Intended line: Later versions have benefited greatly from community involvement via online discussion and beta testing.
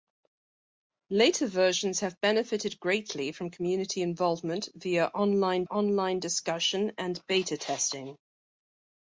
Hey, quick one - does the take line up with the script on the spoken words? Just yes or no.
no